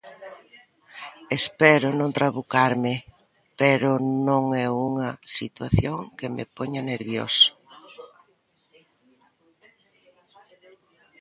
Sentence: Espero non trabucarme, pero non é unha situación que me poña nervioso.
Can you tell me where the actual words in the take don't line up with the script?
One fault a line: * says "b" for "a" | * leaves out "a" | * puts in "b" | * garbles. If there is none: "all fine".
all fine